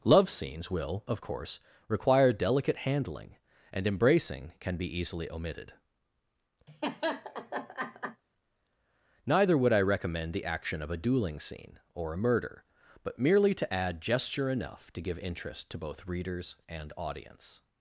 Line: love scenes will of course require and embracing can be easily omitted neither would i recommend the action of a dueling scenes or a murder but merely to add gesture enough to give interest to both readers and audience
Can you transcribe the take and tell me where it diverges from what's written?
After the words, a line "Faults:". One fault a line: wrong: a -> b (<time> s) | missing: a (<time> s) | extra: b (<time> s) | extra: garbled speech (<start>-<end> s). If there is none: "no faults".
love scenes will of course require delicate handling and embracing can be easily omitted neither would i recommend the action of a dueling scene or a murder but merely to add gesture enough to give interest to both readers and audience
Faults:
extra: delicate handling (2.3 s)
wrong: scenes -> scene (11.4 s)